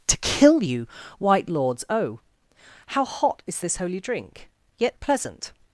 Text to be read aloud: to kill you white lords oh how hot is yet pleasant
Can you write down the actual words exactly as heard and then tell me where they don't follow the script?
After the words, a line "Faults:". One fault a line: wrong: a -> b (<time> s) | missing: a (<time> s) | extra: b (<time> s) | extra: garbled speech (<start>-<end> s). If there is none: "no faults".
to kill you white lords oh how hot is this holy drink yet pleasant
Faults:
extra: this holy drink (3.6 s)